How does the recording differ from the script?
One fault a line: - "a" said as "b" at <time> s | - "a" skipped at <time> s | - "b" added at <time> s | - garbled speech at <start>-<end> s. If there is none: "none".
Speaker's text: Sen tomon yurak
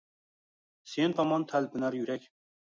- "talpinar" added at 1.5 s